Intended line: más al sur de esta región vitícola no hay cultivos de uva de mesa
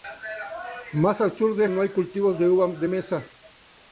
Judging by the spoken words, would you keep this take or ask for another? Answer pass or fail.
fail